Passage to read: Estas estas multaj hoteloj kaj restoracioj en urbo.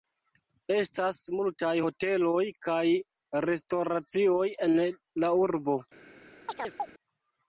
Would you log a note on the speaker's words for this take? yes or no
yes